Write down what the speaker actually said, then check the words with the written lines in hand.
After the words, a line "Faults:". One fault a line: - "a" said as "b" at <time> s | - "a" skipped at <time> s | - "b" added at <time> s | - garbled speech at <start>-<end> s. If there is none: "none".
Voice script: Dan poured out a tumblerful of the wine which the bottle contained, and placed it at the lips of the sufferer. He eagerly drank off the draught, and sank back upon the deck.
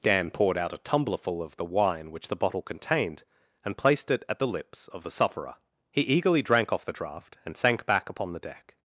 Dan poured out a tumblerful of the wine which the bottle contained, and placed it at the lips of the sufferer. He eagerly drank off the draught, and sank back upon the deck.
Faults:
none